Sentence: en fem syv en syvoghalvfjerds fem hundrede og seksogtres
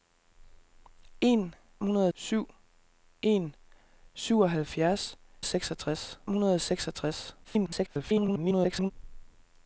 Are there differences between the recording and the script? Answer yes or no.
yes